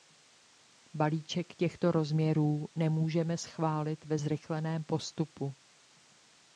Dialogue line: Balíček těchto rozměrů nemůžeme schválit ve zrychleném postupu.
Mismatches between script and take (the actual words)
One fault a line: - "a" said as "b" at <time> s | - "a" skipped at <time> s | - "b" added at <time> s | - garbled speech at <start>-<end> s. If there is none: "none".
none